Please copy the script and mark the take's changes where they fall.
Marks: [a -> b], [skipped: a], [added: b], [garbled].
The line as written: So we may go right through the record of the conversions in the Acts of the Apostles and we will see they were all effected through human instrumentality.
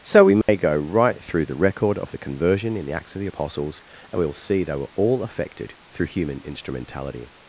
So we may go right through the record of the [conversions -> conversion] in the Acts of the Apostles and we will see they were all effected through human instrumentality.